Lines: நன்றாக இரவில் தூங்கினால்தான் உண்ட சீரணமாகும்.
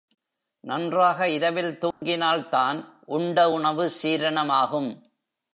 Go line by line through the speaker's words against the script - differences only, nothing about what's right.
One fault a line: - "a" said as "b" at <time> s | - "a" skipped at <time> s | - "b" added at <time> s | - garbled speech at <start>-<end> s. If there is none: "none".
- "உணவு" added at 3.5 s